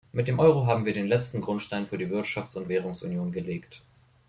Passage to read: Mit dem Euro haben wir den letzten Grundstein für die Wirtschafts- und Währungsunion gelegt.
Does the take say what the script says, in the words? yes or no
yes